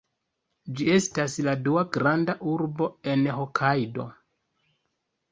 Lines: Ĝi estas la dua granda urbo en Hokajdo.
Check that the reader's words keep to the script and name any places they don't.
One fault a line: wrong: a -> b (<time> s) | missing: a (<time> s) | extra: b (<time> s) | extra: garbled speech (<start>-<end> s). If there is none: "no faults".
no faults